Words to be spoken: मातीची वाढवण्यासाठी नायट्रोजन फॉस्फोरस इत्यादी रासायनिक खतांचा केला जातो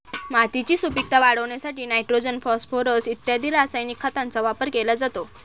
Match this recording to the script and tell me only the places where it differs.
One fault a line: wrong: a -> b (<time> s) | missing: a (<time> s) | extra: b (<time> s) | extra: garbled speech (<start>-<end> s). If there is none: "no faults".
extra: सुपीकता (0.8 s)
extra: वापर (4.4 s)